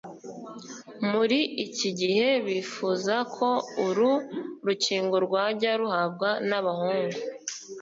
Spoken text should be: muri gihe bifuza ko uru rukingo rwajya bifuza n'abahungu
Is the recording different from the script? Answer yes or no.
yes